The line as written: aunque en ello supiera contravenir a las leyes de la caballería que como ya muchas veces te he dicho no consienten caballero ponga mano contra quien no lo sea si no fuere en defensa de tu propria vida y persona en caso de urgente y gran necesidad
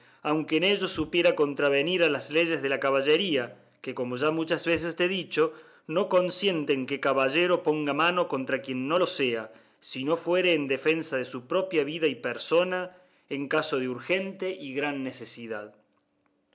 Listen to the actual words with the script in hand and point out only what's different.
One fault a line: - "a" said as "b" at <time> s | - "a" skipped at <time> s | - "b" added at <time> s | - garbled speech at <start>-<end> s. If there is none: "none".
- "que" added at 6.9 s
- "tu" said as "su" at 11.2 s